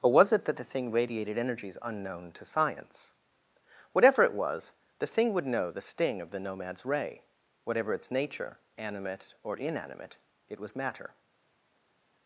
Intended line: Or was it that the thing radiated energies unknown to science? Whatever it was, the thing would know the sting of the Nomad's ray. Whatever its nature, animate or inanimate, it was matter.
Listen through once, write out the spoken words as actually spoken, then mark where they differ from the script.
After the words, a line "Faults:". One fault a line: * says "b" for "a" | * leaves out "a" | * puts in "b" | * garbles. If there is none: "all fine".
Or was it that the thing radiated energies unknown to science? Whatever it was, the thing would know the sting of the Nomad's ray. Whatever its nature, animate or inanimate, it was matter.
Faults:
all fine